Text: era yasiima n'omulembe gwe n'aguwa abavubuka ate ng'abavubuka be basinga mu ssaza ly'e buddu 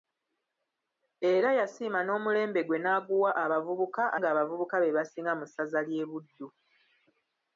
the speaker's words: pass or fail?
fail